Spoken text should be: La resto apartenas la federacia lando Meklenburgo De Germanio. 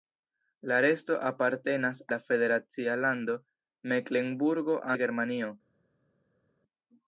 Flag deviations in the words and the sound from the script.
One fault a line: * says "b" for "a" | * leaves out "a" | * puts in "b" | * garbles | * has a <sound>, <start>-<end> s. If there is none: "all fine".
all fine